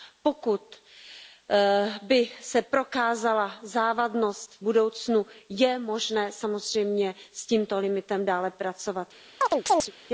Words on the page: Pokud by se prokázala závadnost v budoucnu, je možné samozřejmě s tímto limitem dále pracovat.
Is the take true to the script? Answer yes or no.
yes